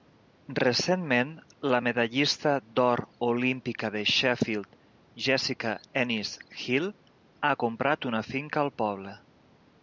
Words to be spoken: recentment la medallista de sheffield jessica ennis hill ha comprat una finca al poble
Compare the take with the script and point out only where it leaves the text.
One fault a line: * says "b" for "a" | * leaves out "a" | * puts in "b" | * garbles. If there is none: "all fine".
* puts in "d'or olímpica"